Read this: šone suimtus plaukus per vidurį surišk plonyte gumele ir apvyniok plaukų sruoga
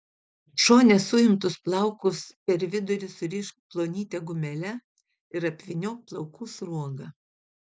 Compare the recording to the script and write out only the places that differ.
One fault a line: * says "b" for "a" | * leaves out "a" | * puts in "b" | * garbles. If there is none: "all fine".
all fine